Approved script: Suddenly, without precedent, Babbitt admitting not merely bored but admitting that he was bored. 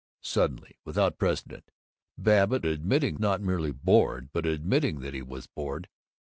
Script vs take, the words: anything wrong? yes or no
no